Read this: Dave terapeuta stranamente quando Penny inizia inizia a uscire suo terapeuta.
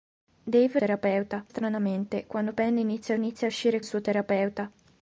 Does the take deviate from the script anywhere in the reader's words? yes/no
no